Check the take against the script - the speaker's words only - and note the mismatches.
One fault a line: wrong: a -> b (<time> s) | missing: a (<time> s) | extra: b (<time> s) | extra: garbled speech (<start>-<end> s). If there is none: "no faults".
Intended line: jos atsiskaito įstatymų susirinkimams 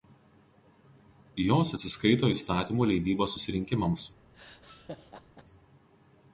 extra: leidybos (2.9 s)